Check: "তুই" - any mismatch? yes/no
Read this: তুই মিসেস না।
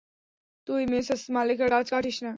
no